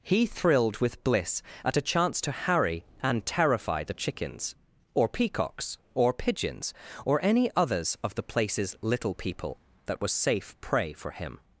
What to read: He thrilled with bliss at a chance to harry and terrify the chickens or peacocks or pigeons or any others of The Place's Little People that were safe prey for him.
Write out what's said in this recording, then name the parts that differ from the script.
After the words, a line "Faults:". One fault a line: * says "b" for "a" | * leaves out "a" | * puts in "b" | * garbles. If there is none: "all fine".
He thrilled with bliss at a chance to harry and terrify the chickens or peacocks or pigeons or any others of The Place's Little People that was safe prey for him.
Faults:
* says "was" for "were"